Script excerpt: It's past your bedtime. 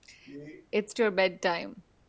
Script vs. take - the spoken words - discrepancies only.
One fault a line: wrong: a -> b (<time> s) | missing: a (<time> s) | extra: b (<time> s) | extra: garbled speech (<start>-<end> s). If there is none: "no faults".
missing: past (0.9 s)